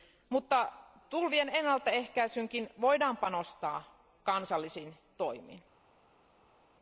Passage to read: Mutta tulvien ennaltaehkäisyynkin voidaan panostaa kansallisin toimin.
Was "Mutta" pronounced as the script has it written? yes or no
yes